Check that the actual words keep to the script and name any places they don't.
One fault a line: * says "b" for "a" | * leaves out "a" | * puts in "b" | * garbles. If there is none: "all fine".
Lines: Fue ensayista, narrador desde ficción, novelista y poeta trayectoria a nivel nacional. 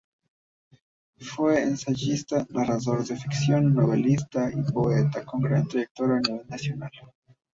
* says "de" for "desde"
* puts in "con gran"